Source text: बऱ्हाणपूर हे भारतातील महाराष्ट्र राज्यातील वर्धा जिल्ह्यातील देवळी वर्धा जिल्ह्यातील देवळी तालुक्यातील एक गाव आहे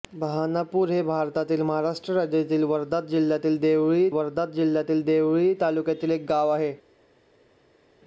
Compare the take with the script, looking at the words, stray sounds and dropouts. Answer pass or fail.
pass